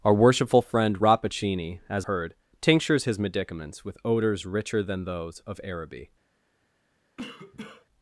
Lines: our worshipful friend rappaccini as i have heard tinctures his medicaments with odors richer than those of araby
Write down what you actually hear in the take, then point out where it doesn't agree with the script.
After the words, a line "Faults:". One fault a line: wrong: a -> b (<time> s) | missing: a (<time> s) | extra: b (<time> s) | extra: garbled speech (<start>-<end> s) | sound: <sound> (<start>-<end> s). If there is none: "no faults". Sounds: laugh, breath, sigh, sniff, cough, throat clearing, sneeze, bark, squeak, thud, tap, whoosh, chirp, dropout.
our worshipful friend rappaccini as heard tinctures his medicaments with odors richer than those of araby
Faults:
missing: i have (2.1 s)
sound: cough (7.2-7.9 s)